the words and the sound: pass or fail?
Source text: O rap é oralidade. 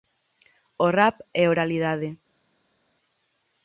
pass